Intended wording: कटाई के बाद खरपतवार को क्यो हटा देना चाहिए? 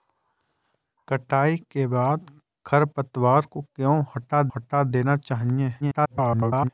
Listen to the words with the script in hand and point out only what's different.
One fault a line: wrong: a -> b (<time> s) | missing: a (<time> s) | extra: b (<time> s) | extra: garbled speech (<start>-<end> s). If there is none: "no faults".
extra: हटा (4.5 s)
extra: garbled speech (5.8-6.7 s)